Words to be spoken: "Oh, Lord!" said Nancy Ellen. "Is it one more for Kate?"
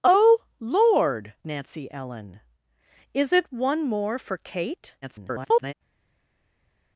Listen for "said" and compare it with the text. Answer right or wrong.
wrong